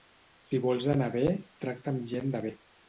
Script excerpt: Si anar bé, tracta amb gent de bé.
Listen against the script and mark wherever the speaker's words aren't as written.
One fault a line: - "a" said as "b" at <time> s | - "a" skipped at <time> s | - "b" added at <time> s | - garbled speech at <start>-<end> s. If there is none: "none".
- "vols" added at 0.6 s